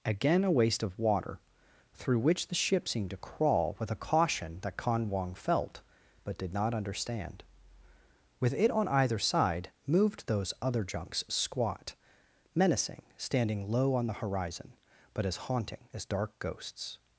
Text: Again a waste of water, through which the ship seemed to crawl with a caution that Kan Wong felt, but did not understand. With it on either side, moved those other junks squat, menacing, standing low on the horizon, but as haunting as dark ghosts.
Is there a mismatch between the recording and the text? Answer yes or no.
no